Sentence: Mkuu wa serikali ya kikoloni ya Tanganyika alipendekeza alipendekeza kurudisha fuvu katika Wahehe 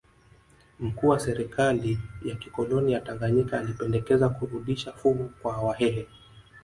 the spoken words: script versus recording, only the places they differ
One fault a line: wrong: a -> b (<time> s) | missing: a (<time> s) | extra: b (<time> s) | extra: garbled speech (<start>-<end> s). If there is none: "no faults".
missing: alipendekeza (4.3 s)
wrong: katika -> kwa (5.4 s)